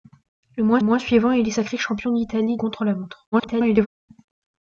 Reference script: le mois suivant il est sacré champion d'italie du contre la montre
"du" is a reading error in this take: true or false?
true